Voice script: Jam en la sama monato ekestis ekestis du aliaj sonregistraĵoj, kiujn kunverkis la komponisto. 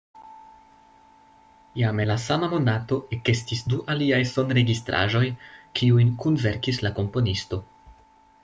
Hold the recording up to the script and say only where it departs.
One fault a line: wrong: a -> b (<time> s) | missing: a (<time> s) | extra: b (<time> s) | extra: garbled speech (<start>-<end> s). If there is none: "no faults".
missing: ekestis (3.6 s)